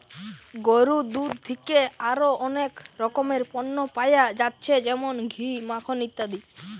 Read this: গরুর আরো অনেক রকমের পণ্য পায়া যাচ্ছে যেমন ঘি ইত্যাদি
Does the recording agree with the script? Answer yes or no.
no